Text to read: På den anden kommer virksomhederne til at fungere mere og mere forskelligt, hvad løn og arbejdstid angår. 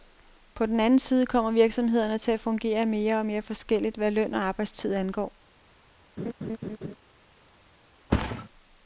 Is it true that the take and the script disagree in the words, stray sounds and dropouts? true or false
true